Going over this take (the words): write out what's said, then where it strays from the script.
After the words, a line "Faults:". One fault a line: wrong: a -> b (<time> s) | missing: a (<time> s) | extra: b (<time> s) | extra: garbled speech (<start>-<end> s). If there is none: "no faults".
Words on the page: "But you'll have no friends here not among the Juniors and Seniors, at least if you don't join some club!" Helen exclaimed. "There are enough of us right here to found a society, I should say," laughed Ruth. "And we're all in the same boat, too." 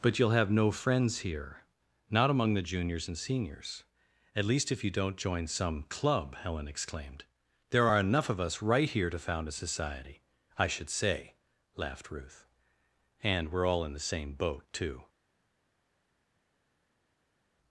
"But you'll have no friends here not among the Juniors and Seniors, at least if you don't join some club!" Helen exclaimed. "There are enough of us right here to found a society, I should say," laughed Ruth. "And we're all in the same boat, too."
Faults:
no faults